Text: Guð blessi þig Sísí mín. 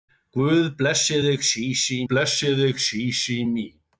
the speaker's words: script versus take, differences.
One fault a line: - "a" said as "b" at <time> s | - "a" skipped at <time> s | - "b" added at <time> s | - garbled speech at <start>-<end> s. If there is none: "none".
- "blessi þig Sísí" added at 2.1 s